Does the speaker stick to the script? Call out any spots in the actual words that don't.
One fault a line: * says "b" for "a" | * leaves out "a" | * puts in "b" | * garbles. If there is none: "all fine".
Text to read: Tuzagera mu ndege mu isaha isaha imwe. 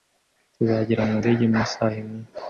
* leaves out "isaha"